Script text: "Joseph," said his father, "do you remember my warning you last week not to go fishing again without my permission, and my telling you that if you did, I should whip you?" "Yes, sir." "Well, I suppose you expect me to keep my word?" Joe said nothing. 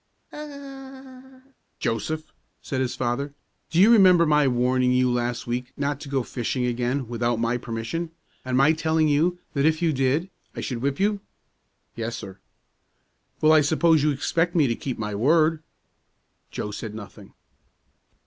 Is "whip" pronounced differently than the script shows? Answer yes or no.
no